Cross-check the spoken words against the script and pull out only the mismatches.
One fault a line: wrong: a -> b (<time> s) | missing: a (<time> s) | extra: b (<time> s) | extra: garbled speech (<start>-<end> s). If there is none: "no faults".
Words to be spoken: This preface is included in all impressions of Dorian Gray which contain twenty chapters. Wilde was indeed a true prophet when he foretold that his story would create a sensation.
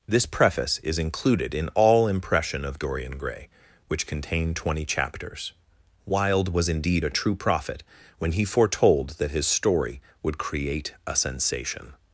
wrong: impressions -> impression (2.1 s)